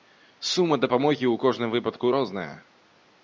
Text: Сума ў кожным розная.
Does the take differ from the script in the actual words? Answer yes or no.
yes